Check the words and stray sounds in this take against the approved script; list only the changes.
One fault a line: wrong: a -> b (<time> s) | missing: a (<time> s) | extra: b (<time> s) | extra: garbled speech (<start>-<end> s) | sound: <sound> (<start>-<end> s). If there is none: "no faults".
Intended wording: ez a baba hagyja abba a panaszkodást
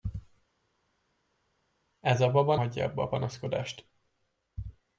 no faults